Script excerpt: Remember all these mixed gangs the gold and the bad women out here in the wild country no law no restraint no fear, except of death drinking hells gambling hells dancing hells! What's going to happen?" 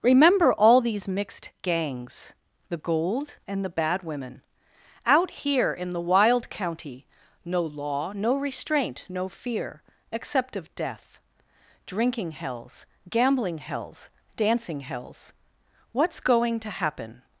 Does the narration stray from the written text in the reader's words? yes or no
yes